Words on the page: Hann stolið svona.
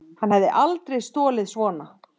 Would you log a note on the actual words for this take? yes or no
yes